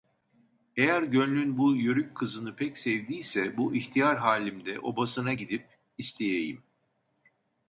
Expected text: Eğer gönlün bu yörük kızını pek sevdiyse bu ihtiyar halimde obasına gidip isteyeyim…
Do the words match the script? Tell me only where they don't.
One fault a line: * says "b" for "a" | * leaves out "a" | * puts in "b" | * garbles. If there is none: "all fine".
all fine